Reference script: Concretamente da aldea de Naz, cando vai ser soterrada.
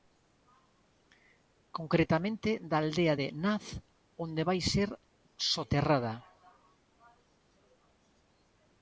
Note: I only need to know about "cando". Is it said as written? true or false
false